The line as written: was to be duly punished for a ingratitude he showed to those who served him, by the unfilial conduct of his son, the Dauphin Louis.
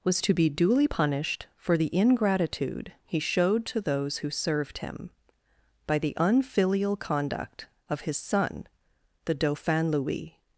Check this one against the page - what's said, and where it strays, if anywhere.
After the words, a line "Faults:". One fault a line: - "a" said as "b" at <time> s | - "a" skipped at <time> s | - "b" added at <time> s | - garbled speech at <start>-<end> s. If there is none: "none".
was to be duly punished for the ingratitude he showed to those who served him, by the unfilial conduct of his son, the Dauphin Louis.
Faults:
- "a" said as "the" at 1.8 s